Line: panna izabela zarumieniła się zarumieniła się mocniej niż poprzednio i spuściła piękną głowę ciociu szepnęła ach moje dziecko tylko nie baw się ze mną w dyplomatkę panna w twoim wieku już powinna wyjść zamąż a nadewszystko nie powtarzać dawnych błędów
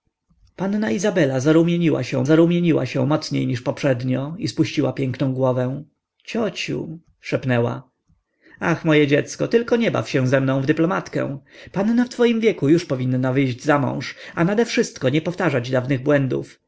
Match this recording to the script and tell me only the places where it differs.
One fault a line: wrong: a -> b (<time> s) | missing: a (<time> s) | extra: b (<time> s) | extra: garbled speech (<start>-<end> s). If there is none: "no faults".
no faults